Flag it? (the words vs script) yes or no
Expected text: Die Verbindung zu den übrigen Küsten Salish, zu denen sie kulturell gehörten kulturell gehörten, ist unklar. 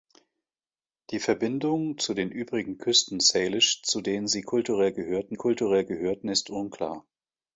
no